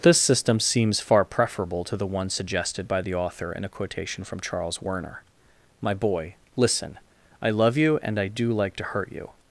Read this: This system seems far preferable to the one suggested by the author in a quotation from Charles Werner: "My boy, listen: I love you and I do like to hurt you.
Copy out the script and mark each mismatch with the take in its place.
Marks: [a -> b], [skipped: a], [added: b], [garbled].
This system seems far preferable to the one suggested by the author in a quotation from Charles Werner: "My boy, listen: I love you and I do like to hurt you.